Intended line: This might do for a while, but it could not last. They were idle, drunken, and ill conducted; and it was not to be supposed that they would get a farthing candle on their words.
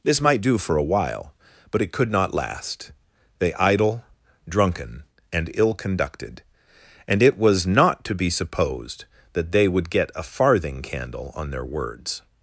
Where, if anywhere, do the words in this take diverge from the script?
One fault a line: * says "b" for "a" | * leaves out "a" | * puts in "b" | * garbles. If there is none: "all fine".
* leaves out "were"